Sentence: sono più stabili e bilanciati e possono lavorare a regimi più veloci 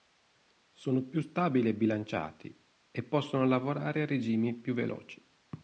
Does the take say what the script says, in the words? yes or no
yes